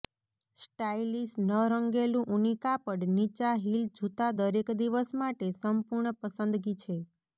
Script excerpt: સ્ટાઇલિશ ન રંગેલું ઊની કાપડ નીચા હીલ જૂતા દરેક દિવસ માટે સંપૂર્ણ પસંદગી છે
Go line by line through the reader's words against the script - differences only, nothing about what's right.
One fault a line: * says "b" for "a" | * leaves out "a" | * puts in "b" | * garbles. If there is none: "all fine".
all fine